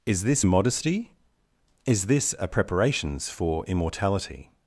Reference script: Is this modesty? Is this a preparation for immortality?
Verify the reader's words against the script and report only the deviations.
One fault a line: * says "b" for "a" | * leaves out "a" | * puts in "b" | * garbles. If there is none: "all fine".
* says "preparations" for "preparation"